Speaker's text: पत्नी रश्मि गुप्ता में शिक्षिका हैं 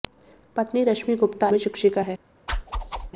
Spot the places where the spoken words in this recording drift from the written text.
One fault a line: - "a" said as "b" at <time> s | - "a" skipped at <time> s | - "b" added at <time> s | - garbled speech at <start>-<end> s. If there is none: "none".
none